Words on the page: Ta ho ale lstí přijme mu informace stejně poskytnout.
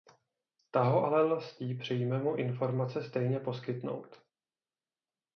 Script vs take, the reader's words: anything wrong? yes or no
no